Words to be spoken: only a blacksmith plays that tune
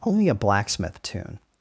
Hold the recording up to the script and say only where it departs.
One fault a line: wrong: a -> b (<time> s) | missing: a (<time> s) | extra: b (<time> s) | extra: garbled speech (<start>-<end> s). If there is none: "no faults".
missing: plays that (1.0 s)